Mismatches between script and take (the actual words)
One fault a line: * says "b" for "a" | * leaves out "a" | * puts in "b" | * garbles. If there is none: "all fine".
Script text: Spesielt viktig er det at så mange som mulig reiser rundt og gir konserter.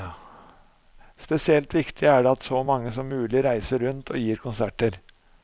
all fine